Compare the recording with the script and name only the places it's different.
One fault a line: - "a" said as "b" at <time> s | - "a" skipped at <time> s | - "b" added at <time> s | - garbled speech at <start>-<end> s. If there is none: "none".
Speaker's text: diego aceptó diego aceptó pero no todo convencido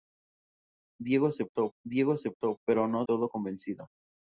none